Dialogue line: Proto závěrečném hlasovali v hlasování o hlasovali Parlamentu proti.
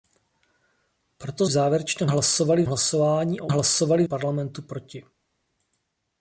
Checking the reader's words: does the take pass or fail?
pass